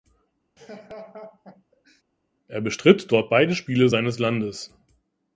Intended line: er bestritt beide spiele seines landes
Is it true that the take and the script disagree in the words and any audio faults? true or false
true